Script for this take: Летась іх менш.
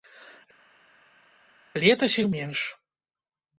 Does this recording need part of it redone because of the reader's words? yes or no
no